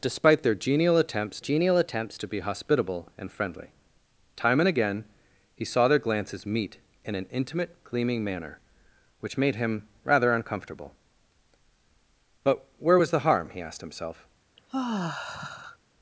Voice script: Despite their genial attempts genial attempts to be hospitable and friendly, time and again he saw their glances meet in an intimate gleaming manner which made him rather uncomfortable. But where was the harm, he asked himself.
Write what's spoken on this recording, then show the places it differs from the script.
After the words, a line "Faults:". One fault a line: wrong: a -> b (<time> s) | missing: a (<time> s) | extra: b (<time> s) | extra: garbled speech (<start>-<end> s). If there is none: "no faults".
Despite their genial attempts genial attempts to be hospitable and friendly, time and again he saw their glances meet in an intimate gleaming manner which made him rather uncomfortable. But where was the harm, he asked himself.
Faults:
no faults